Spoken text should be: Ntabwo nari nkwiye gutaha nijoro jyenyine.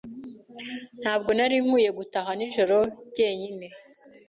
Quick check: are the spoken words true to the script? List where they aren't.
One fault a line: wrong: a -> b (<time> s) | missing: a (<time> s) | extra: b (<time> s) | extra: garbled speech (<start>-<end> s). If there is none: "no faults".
no faults